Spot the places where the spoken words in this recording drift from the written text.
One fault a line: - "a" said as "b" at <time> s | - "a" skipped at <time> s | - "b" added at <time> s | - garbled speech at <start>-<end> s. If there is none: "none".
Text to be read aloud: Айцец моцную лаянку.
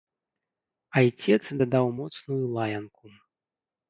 - "дадаў" added at 1.6 s